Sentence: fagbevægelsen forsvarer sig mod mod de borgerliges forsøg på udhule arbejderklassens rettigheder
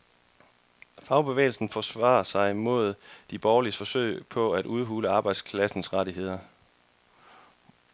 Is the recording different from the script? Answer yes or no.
yes